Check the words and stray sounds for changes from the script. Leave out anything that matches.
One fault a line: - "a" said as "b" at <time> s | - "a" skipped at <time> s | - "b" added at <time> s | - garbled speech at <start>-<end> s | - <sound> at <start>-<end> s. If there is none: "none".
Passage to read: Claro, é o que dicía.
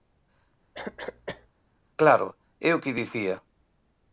- cough at 0.7-1.5 s